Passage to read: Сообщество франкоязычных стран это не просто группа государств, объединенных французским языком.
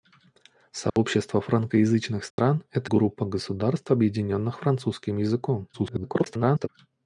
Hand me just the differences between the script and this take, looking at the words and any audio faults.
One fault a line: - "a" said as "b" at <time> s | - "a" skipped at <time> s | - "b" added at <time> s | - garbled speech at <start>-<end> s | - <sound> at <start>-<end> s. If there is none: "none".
- dropout at 0.9-1.0 s
- dropout at 2.3-2.4 s
- "не просто" skipped at 2.9 s
- garbled speech at 5.7-6.7 s